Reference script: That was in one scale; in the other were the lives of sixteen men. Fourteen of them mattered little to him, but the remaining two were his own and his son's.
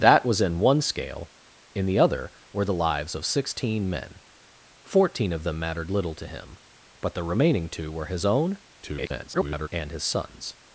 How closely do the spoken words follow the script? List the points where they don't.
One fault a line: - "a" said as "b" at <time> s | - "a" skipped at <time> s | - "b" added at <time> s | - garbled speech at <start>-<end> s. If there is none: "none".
- garbled speech at 8.8-9.7 s